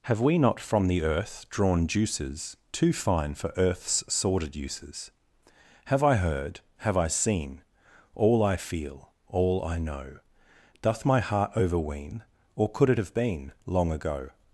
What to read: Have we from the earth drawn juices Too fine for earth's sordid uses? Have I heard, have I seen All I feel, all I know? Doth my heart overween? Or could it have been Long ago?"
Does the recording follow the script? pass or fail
fail